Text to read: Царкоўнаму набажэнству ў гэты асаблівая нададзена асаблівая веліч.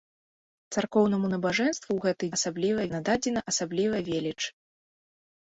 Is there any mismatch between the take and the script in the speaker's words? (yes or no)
no